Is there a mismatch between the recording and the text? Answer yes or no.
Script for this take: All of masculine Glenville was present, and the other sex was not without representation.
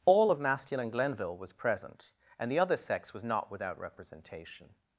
no